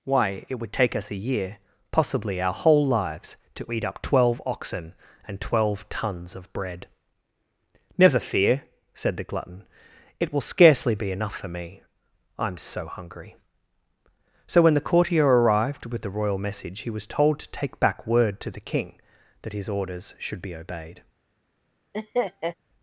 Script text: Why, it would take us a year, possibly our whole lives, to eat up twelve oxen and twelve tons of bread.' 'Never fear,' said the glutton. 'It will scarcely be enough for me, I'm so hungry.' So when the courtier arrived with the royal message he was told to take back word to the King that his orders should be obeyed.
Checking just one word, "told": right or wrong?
right